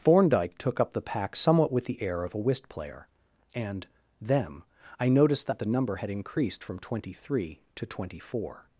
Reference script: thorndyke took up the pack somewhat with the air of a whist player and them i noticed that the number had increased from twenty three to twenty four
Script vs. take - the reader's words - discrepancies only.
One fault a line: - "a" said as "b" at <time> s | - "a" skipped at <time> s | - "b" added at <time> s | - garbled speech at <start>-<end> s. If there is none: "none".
none